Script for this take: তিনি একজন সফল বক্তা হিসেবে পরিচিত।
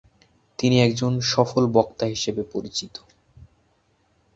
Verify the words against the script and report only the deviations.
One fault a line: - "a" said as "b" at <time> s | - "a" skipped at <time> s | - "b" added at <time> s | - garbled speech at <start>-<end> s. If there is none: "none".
none